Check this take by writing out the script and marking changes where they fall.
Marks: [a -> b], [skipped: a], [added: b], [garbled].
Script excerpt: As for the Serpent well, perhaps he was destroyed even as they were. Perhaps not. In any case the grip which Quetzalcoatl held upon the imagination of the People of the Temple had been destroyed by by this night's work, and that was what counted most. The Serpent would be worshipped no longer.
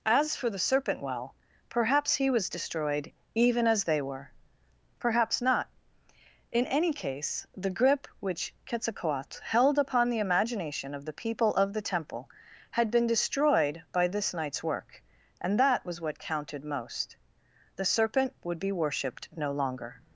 As for the Serpent well, perhaps he was destroyed even as they were. Perhaps not. In any case the grip which Quetzalcoatl held upon the imagination of the People of the Temple had been destroyed by [skipped: by] this night's work, and that was what counted most. The Serpent would be worshipped no longer.